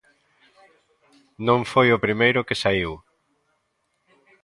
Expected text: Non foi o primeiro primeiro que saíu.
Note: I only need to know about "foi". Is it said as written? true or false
true